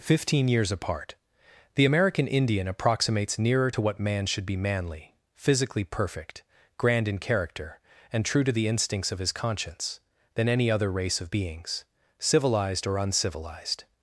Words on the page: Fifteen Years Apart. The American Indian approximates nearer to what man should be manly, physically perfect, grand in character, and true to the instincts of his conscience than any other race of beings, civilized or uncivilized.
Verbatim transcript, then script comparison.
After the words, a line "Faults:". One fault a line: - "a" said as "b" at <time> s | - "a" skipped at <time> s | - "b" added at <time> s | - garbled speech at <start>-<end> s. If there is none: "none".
Fifteen Years Apart. The American Indian approximates nearer to what man should be manly, physically perfect, grand in character, and true to the instincts of his conscience than any other race of beings, civilized or uncivilized.
Faults:
none